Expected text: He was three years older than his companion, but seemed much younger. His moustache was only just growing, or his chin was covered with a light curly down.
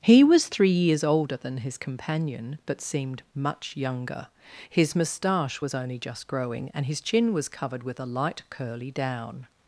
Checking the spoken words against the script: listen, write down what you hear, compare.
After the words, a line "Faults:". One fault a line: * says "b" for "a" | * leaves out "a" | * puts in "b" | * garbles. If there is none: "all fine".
He was three years older than his companion, but seemed much younger. His moustache was only just growing, and his chin was covered with a light curly down.
Faults:
* says "and" for "or"